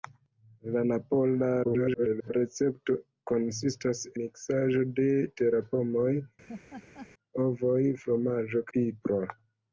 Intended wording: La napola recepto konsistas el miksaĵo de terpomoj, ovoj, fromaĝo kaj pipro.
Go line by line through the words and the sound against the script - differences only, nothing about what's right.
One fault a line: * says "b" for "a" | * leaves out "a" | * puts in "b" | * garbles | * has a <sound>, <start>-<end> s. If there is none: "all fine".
* garbles
* leaves out "el"
* has a laugh, 6.5-7.1 s
* leaves out "kaj"